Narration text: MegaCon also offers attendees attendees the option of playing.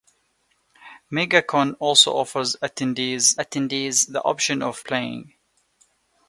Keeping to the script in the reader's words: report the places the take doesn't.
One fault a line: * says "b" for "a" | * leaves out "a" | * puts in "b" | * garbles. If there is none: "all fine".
all fine